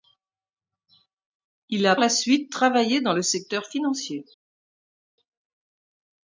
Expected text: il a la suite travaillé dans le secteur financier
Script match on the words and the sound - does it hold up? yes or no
yes